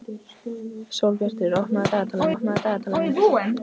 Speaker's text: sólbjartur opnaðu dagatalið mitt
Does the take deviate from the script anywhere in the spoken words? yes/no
yes